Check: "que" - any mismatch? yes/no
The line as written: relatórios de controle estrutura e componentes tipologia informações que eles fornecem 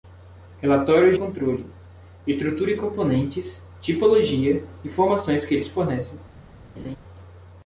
no